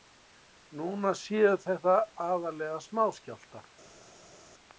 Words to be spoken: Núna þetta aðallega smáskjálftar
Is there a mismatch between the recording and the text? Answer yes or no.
yes